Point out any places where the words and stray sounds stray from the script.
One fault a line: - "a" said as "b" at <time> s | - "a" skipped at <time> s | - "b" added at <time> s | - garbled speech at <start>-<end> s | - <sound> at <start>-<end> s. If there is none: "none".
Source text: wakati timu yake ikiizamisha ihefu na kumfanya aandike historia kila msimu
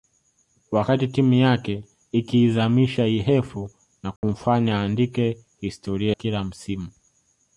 - dropout at 4.2-4.2 s